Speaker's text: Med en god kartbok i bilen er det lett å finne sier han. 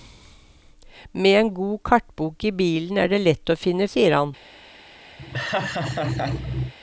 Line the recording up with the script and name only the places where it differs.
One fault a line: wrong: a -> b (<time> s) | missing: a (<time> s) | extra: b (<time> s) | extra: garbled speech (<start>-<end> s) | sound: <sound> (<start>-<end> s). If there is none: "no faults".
sound: laugh (5.2-6.7 s)